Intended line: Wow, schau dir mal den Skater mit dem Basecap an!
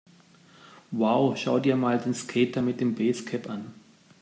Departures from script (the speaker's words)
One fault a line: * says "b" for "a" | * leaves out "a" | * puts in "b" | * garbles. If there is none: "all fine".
all fine